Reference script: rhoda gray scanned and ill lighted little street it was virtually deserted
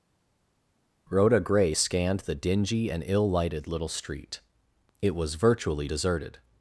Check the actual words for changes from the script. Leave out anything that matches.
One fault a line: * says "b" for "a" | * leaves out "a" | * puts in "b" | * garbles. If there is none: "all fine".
* puts in "the dingy"